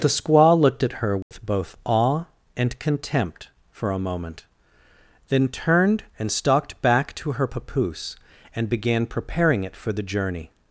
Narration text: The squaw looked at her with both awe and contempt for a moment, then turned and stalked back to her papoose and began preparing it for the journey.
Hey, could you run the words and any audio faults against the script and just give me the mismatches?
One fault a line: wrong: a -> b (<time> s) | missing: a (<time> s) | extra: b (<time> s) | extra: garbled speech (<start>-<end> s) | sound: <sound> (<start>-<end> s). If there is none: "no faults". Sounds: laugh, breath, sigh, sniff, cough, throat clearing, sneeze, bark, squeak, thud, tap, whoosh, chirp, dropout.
sound: dropout (1.2-1.3 s)